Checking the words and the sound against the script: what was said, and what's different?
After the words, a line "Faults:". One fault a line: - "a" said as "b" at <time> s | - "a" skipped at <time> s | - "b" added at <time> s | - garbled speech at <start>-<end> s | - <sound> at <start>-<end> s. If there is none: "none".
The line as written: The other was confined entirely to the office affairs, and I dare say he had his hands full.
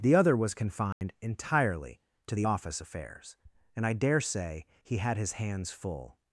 The other was confined entirely to the office affairs, and I dare say he had his hands full.
Faults:
- dropout at 0.9-1.0 s